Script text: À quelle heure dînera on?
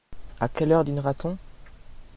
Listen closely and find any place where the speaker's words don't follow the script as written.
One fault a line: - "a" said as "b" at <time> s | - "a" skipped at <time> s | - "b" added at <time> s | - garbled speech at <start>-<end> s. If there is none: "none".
- "t" added at 1.1 s